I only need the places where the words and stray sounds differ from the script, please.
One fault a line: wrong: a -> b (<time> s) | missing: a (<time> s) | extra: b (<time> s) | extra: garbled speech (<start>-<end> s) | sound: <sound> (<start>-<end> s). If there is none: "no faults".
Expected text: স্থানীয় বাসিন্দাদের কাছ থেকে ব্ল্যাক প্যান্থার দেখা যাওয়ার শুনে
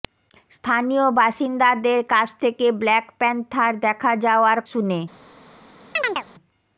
sound: chirp (6.0-6.3 s)